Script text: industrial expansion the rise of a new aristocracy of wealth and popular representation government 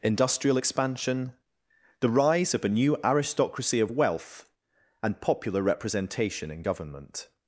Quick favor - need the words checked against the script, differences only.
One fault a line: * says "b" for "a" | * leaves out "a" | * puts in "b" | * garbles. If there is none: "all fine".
* puts in "in"